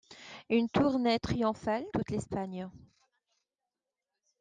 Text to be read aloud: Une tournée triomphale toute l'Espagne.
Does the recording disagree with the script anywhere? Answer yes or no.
no